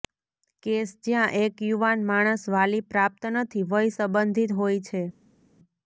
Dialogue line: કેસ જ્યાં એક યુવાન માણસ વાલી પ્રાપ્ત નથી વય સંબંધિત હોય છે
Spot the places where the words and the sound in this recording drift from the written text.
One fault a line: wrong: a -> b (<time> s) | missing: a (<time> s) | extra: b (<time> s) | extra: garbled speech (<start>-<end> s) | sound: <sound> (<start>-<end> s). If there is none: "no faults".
no faults